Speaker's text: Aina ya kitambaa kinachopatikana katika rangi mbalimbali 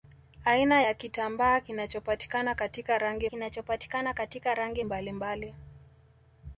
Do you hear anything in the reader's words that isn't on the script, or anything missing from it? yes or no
yes